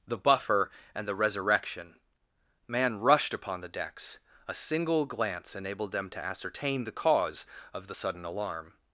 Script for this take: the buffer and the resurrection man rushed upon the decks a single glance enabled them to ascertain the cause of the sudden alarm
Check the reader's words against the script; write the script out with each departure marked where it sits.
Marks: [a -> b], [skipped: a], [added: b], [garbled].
the buffer and the resurrection man rushed upon the decks a single glance enabled them to ascertain the cause of the sudden alarm